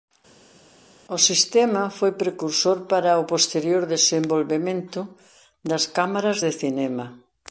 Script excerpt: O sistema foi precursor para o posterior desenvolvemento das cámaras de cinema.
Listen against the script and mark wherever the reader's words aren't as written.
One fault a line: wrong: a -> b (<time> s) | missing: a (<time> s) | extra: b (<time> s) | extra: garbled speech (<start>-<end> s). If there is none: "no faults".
no faults